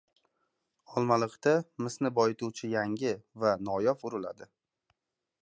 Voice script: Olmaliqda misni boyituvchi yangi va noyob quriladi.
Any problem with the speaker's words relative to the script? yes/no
no